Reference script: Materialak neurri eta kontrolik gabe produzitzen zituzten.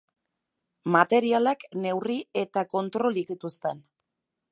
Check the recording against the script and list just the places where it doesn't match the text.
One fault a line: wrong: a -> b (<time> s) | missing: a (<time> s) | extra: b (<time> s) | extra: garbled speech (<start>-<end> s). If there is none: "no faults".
missing: gabe produzitzen (3.3 s)